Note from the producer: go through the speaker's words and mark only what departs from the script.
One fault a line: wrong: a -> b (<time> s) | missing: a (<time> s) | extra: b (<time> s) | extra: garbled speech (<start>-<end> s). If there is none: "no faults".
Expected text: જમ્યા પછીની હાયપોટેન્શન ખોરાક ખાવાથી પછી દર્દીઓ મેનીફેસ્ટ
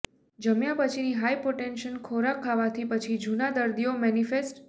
extra: જૂના (3.2 s)